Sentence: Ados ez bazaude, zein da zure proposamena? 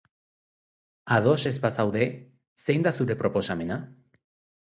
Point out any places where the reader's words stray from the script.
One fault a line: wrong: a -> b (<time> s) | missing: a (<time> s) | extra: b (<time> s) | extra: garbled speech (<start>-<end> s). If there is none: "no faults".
no faults